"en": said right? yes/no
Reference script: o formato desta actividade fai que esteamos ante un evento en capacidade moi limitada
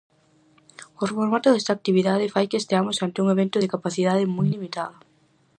no